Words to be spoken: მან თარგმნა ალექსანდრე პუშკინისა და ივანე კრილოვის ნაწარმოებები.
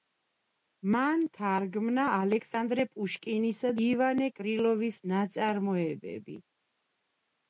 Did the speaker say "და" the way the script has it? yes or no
no